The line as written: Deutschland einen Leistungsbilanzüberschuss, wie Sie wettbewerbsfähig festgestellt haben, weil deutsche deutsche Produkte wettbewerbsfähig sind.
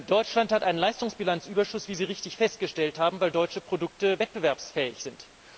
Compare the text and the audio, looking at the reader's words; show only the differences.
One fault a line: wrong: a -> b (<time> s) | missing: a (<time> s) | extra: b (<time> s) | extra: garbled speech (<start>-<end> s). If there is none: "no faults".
extra: hat (0.5 s)
wrong: wettbewerbsfähig -> richtig (2.0 s)
missing: deutsche (3.6 s)